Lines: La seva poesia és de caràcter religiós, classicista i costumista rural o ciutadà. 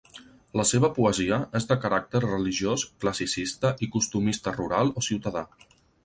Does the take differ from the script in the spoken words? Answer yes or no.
no